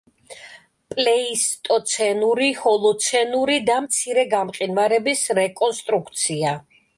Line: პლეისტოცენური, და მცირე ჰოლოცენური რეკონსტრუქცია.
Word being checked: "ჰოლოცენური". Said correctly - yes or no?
no